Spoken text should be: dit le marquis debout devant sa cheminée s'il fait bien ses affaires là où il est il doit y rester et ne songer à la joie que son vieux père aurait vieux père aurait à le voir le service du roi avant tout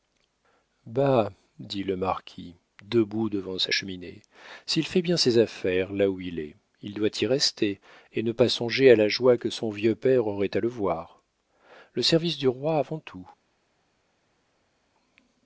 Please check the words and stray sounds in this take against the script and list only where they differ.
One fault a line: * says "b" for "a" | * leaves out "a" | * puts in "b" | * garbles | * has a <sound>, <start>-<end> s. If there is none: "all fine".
* puts in "pas"
* leaves out "vieux père aurait"